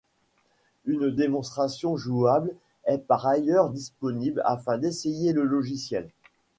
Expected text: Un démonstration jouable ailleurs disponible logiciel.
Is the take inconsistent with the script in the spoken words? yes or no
yes